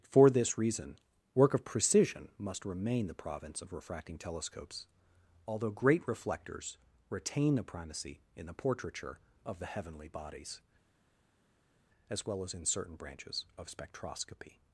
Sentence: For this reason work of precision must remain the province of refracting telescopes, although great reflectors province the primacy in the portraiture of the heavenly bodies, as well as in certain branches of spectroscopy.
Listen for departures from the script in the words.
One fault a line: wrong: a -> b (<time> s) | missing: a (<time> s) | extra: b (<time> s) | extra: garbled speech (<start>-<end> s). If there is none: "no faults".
wrong: province -> retain (7.1 s)